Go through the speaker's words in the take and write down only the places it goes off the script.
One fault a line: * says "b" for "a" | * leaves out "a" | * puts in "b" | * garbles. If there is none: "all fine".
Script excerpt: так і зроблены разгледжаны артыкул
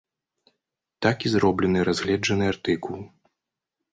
all fine